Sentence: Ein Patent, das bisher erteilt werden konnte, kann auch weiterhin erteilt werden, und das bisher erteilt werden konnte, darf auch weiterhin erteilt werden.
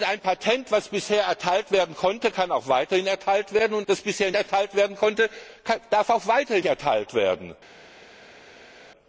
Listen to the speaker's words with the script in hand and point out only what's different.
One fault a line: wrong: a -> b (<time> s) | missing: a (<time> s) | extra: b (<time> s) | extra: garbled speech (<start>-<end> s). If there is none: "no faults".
no faults